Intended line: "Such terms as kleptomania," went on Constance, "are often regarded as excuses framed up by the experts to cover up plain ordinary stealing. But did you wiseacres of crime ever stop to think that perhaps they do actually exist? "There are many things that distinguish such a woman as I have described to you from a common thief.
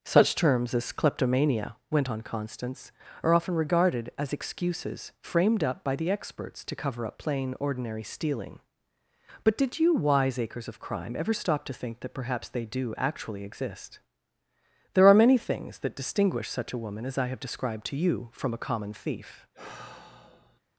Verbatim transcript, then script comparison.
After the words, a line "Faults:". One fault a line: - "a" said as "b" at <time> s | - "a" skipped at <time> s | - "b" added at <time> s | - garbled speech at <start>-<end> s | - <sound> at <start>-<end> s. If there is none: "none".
"Such terms as kleptomania," went on Constance, "are often regarded as excuses framed up by the experts to cover up plain ordinary stealing. But did you wiseacres of crime ever stop to think that perhaps they do actually exist? "There are many things that distinguish such a woman as I have described to you from a common thief.
Faults:
- sigh at 19.5-20.6 s